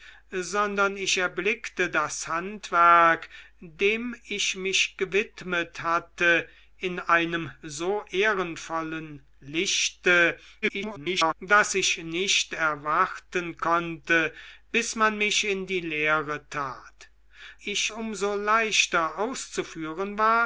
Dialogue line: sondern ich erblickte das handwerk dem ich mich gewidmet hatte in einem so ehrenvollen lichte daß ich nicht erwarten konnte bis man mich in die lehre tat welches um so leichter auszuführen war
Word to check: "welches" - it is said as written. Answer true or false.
false